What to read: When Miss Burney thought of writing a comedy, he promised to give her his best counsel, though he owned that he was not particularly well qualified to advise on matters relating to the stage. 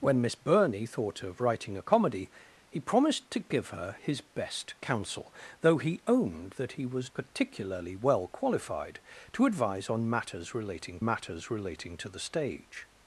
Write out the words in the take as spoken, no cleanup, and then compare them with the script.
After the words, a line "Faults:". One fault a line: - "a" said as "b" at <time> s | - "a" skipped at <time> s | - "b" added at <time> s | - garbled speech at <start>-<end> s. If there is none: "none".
When Miss Burney thought of writing a comedy, he promised to give her his best counsel, though he owned that he was particularly well qualified to advise on matters relating matters relating to the stage.
Faults:
- "not" skipped at 7.1 s
- "matters relating" added at 11.0 s